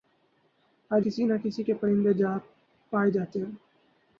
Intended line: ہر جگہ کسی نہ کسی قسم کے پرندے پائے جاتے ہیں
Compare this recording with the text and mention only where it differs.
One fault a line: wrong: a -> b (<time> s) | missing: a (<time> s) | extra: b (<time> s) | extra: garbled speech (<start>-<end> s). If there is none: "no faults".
missing: جگہ (1.0 s)
missing: قسم (1.6 s)